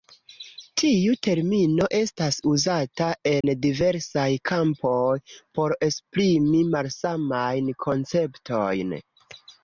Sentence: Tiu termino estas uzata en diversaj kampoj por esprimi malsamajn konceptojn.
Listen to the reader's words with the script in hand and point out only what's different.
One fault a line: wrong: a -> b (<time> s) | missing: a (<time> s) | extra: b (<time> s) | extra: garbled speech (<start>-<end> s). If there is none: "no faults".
no faults